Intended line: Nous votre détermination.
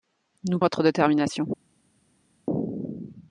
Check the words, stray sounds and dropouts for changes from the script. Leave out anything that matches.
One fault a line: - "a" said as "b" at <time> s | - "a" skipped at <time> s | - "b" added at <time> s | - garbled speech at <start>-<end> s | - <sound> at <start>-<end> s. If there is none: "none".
none